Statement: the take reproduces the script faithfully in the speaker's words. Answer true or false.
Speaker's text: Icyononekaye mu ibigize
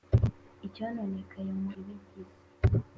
true